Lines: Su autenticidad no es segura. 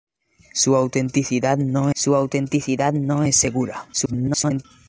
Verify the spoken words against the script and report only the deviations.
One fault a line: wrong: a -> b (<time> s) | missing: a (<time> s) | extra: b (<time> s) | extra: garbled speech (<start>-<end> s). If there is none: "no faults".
extra: su autenticidad no (2.0 s)
extra: garbled speech (3.9-4.7 s)